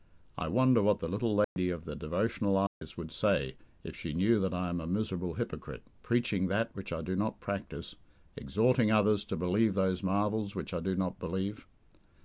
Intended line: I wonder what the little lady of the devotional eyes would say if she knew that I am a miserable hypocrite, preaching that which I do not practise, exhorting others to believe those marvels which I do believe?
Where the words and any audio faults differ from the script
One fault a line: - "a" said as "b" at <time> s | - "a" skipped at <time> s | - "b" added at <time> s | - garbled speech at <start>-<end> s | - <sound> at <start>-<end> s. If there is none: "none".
- dropout at 1.4-1.6 s
- dropout at 2.7-2.8 s
- "not" added at 11.0 s